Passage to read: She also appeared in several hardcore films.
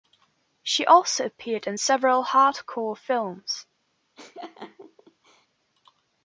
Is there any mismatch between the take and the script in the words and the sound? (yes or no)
yes